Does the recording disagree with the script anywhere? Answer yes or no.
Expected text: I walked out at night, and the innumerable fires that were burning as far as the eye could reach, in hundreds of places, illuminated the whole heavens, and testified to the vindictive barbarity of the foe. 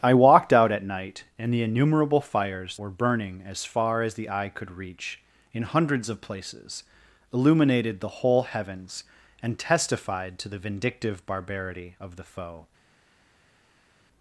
yes